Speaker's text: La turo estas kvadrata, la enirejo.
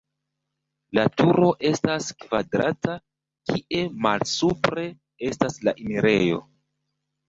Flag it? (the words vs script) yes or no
yes